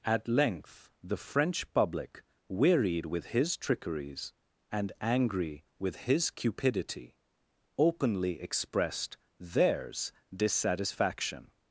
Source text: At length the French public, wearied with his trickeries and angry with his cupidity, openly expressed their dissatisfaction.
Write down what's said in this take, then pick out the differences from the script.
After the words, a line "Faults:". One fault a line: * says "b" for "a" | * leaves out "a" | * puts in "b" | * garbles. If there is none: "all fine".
At length the French public, wearied with his trickeries and angry with his cupidity, openly expressed theirs dissatisfaction.
Faults:
* says "theirs" for "their"